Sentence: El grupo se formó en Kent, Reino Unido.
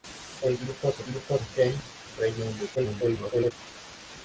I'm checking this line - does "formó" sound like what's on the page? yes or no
no